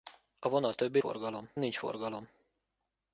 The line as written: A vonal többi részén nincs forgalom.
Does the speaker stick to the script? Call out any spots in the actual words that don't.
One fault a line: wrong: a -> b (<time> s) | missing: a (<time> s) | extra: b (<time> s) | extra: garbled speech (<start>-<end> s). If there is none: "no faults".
wrong: részén -> forgalom (1.0 s)